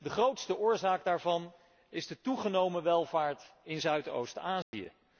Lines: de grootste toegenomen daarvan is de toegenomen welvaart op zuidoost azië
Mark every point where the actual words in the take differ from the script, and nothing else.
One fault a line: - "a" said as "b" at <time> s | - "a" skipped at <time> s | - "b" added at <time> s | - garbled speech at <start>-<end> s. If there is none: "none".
- "toegenomen" said as "oorzaak" at 0.6 s
- "op" said as "in" at 3.6 s